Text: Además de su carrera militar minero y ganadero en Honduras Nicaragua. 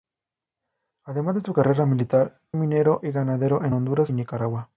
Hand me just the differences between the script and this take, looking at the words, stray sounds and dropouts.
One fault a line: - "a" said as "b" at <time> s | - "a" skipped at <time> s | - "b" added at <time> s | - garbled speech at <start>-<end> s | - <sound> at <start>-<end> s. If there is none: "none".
none